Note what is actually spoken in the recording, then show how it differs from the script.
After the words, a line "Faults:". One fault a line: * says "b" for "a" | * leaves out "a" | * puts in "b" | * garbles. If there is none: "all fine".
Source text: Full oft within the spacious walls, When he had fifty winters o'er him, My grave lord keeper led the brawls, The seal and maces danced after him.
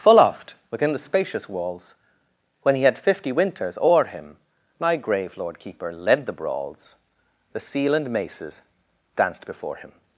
Full oft within the spacious walls, When he had fifty winters o'er him, My grave lord keeper led the brawls, The seal and maces danced before him.
Faults:
* says "before" for "after"